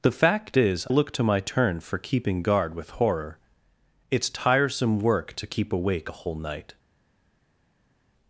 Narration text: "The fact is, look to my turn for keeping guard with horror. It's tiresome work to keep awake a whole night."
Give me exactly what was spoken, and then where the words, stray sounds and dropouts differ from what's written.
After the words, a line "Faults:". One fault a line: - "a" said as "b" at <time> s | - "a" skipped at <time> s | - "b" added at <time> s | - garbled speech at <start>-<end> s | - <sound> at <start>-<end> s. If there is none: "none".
"The fact is, look to my turn for keeping guard with horror. It's tiresome work to keep awake a whole night."
Faults:
none